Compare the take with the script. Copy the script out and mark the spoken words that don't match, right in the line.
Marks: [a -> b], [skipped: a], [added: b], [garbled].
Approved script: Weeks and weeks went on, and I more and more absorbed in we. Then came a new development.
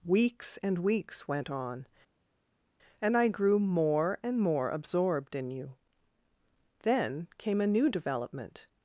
Weeks and weeks went on, and I [added: grew] more and more absorbed in [we. -> you] Then came a new development.